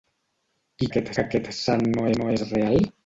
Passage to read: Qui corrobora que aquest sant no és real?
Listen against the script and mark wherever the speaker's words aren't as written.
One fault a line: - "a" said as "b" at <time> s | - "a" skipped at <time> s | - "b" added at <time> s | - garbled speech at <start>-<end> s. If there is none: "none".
- "corrobora" said as "aquest" at 0.9 s
- "no" added at 2.2 s